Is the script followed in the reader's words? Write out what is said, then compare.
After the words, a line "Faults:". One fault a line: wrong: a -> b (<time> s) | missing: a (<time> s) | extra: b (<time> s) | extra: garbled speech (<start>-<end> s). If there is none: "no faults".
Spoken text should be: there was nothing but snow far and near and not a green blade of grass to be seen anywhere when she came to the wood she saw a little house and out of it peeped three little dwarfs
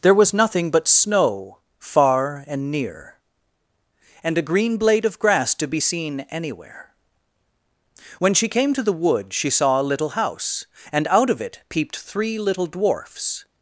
there was nothing but snow far and near and a green blade of grass to be seen anywhere when she came to the wood she saw a little house and out of it peeped three little dwarfs
Faults:
missing: not (4.3 s)